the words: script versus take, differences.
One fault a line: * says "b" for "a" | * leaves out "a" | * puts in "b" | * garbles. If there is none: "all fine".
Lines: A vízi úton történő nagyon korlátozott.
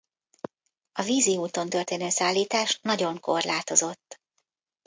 * puts in "szállítás"